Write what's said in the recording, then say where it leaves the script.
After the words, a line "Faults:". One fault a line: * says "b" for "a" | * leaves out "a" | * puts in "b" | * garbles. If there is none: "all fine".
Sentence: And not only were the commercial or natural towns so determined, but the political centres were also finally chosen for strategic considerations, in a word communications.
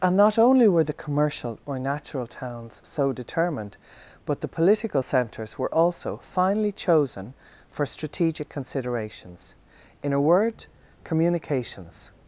And not only were the commercial or natural towns so determined, but the political centres were also finally chosen for strategic considerations, in a word communications.
Faults:
all fine